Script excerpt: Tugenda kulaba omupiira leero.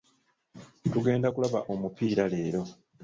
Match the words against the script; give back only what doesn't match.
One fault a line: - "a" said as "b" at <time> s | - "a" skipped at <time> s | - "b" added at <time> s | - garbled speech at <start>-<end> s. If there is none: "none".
none